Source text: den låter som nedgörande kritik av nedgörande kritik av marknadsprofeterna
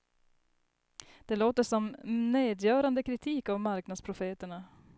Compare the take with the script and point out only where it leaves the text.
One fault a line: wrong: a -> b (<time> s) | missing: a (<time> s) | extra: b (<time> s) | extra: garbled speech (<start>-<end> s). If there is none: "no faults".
wrong: den -> det (1.2 s)
missing: nedgörande kritik av (3.6 s)